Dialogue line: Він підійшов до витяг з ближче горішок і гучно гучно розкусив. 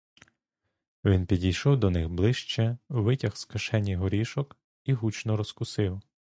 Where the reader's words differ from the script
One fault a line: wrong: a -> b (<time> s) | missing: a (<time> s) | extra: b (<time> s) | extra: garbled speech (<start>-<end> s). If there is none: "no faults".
extra: них ближче (1.9 s)
wrong: ближче -> кишені (3.5 s)
missing: гучно (5.4 s)